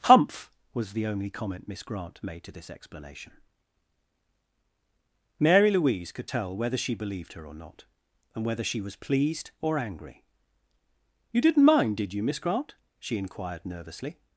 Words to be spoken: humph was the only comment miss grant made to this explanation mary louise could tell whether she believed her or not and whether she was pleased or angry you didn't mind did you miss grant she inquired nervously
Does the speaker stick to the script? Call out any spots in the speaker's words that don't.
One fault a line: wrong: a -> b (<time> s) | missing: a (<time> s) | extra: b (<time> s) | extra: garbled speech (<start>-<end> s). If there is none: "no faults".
no faults